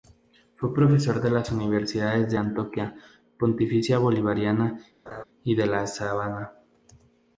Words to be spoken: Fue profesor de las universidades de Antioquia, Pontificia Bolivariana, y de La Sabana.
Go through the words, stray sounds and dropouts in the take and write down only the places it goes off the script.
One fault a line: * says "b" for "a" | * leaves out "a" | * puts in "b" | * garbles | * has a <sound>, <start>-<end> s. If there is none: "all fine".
* has a laugh, 5.1-5.2 s